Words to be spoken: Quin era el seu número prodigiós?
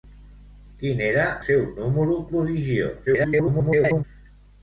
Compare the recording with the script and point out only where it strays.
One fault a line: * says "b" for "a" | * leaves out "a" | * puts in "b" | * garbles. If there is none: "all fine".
* leaves out "el"
* garbles